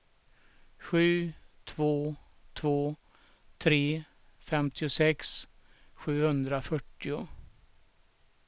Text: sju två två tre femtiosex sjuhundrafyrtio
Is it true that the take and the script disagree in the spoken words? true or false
false